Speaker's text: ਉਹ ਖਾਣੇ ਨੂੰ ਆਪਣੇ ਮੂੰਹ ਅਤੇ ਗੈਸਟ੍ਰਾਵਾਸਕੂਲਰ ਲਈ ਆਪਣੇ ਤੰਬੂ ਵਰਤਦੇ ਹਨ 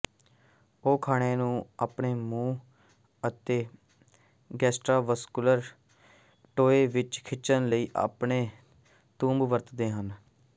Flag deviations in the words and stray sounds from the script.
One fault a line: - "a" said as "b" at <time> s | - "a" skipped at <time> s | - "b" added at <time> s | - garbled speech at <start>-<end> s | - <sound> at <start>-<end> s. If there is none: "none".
- "ਟੋਏ ਵਿੱਚ ਖਿੱਚਣ" added at 6.6 s